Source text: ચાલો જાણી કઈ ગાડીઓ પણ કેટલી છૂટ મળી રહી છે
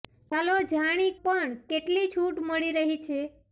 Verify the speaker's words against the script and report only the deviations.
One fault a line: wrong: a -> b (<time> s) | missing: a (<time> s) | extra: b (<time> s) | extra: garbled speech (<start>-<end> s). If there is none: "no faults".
missing: કઈ ગાડીઓ (1.1 s)